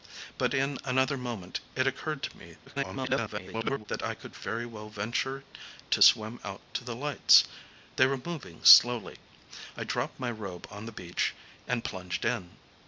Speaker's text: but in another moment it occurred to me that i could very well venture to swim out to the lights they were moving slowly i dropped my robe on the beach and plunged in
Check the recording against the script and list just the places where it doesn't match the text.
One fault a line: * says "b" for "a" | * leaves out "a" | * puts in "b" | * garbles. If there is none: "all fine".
* garbles